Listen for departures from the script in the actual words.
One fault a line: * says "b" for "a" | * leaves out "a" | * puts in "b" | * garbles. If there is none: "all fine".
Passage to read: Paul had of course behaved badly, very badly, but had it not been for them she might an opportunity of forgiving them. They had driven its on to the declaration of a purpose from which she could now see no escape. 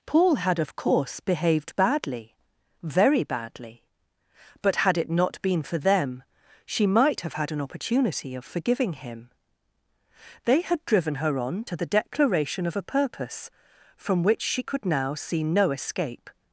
* puts in "have had"
* says "him" for "them"
* says "her" for "its"